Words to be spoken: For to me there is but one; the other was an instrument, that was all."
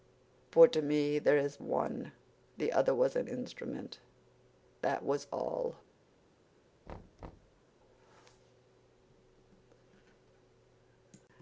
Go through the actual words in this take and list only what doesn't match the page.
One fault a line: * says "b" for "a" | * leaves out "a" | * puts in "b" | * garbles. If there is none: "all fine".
* leaves out "but"